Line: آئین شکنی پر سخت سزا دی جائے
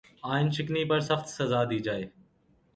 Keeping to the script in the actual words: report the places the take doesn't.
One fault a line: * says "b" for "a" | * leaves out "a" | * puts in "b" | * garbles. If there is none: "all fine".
all fine